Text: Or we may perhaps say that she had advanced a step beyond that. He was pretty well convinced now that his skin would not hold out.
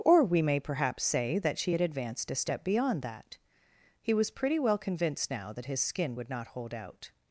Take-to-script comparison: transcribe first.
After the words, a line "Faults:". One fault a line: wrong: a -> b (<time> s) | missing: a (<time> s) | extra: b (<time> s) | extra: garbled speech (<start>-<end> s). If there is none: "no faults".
Or we may perhaps say that she had advanced a step beyond that. He was pretty well convinced now that his skin would not hold out.
Faults:
no faults